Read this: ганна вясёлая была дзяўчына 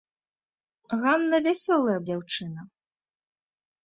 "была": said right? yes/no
no